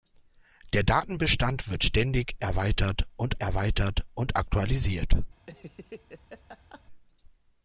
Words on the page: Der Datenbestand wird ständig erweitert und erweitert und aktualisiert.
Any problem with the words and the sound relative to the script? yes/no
yes